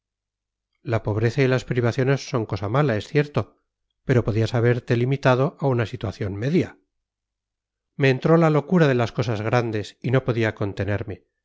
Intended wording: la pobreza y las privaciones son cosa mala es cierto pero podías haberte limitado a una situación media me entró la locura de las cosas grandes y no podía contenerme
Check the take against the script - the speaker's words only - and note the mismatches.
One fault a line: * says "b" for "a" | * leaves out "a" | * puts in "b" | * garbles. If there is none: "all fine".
all fine